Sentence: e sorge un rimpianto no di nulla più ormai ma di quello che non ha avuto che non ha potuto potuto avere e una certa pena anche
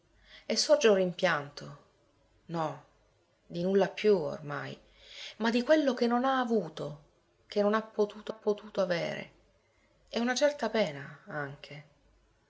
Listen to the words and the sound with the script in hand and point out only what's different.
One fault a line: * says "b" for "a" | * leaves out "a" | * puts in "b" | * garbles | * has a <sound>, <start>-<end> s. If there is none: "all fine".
all fine